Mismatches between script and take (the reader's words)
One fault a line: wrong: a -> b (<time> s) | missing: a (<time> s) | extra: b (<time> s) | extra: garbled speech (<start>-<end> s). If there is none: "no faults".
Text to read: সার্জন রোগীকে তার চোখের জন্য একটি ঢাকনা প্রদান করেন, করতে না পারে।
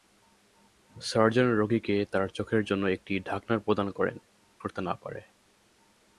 no faults